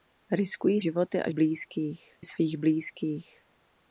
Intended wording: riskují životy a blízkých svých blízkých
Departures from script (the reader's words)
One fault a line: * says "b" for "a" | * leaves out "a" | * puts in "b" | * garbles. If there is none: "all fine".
all fine